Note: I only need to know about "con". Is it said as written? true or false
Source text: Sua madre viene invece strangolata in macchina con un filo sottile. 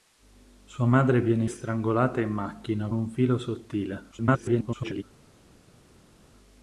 false